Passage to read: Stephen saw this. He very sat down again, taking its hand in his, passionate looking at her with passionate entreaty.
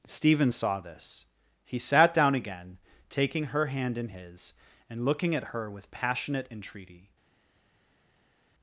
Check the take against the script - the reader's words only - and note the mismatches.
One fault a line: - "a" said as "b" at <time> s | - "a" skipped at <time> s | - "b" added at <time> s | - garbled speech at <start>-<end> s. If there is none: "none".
- "very" skipped at 1.8 s
- "its" said as "her" at 3.5 s
- "passionate" said as "and" at 4.9 s